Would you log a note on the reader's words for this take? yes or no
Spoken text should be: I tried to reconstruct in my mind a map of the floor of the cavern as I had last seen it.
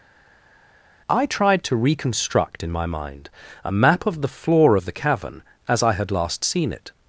no